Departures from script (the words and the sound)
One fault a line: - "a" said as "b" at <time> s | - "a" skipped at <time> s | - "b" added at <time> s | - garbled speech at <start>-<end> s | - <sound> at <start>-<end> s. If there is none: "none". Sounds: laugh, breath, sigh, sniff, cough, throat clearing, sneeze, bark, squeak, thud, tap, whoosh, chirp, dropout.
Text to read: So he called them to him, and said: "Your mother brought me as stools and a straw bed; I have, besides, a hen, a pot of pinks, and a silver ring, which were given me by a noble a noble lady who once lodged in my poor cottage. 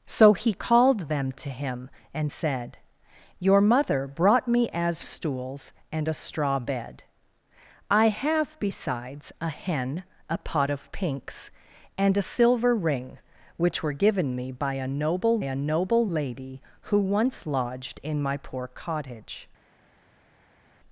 none